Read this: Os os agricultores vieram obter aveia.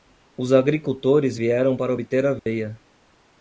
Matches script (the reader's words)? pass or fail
fail